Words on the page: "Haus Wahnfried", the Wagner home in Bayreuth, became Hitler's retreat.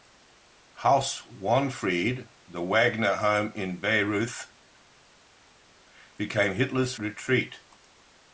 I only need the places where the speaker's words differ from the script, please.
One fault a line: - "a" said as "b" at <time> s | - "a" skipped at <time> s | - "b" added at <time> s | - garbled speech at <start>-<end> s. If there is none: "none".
none